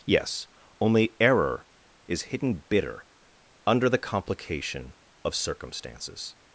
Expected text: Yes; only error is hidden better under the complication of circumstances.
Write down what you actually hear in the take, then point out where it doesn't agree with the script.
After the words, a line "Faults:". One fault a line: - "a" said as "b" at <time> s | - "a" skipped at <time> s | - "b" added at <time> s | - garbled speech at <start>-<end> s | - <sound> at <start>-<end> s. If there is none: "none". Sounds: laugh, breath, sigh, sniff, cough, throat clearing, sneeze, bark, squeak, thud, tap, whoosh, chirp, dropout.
Yes; only error is hidden bitter under the complication of circumstances.
Faults:
- "better" said as "bitter" at 2.7 s